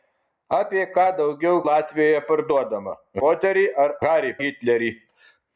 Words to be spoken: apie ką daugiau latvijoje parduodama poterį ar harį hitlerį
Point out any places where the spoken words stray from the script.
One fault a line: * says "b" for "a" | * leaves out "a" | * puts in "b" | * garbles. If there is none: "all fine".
all fine